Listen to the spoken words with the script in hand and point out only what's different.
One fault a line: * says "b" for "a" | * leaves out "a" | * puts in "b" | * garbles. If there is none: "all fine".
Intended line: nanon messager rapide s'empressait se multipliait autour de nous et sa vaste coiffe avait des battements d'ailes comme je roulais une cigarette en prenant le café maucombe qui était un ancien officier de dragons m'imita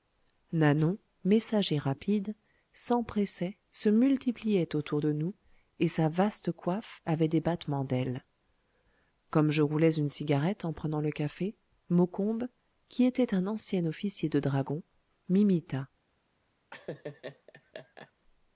all fine